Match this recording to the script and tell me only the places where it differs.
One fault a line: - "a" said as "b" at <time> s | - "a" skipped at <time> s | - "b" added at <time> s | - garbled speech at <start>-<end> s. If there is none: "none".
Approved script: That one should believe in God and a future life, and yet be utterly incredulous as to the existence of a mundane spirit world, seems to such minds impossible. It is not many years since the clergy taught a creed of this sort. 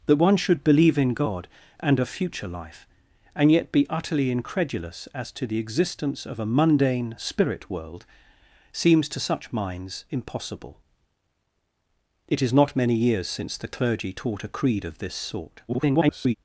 - garbled speech at 15.7-16.3 s